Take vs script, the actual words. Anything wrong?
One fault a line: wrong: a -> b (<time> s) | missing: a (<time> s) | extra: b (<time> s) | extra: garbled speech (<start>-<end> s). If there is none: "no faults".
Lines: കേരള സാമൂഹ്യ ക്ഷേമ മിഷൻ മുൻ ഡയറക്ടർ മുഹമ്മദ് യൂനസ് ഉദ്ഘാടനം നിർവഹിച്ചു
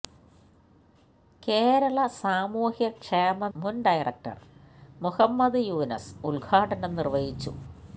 missing: മിഷൻ (3.5 s)